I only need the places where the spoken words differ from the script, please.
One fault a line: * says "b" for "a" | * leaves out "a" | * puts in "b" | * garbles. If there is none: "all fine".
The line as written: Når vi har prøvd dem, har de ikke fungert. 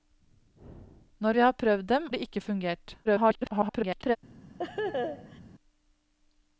* leaves out "har"
* garbles